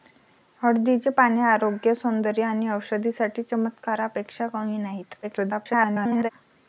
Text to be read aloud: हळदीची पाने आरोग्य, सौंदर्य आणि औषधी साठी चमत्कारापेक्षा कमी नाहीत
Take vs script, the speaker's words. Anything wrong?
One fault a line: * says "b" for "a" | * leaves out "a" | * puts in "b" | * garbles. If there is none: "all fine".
* garbles